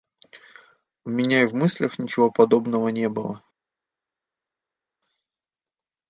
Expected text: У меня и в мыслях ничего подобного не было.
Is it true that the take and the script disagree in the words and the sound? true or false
false